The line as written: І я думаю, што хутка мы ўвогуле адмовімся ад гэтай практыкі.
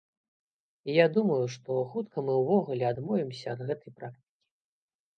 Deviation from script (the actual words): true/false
false